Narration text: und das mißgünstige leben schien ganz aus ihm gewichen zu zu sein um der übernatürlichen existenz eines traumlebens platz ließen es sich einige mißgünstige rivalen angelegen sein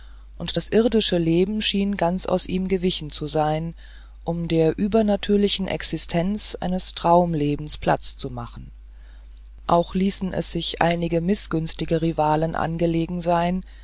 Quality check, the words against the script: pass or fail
fail